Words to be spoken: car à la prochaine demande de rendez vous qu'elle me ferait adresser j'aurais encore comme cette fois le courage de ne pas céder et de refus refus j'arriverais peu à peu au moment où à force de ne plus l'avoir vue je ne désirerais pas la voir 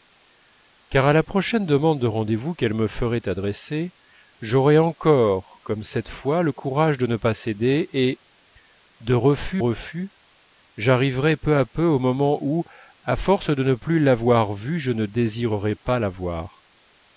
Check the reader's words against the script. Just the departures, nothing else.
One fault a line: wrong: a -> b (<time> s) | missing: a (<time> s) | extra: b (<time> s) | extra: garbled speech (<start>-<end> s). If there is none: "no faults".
no faults